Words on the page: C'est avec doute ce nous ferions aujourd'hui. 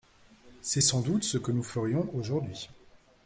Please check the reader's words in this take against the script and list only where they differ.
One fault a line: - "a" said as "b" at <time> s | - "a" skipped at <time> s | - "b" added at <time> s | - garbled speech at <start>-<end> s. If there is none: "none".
- "avec" said as "sans" at 0.8 s
- "que" added at 1.4 s